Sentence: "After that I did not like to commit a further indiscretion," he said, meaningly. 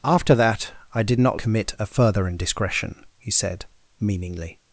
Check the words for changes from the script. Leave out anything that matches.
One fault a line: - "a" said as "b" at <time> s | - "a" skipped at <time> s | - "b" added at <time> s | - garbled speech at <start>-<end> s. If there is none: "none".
- "like to" skipped at 1.4 s